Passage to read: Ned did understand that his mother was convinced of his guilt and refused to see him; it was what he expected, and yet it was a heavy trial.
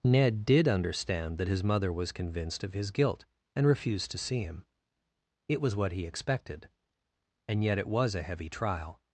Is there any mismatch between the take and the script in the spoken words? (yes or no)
no